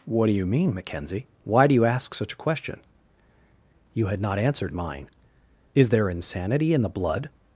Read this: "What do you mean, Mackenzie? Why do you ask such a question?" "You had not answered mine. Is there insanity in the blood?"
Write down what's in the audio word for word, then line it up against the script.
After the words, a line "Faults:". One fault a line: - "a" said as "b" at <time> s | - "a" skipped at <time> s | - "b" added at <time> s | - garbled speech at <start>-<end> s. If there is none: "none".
"What do you mean, Mackenzie? Why do you ask such a question?" "You had not answered mine. Is there insanity in the blood?"
Faults:
none